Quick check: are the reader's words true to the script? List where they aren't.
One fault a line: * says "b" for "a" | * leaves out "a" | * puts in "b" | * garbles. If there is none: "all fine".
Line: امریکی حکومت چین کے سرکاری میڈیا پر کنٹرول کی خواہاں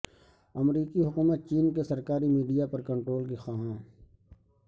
all fine